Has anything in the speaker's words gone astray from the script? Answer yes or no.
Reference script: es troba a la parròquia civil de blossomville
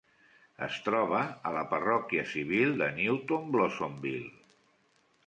yes